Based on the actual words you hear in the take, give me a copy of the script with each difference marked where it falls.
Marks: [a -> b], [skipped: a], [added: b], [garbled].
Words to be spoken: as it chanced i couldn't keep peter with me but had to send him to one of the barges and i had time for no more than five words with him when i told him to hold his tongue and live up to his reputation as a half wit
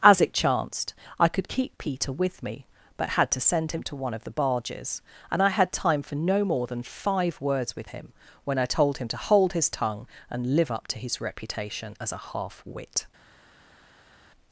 as it chanced i [couldn't -> could] keep peter with me but had to send him to one of the barges and i had time for no more than five words with him when i told him to hold his tongue and live up to his reputation as a half wit